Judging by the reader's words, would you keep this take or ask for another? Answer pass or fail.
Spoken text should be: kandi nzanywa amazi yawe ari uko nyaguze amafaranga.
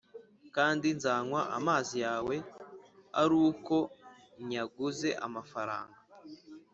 pass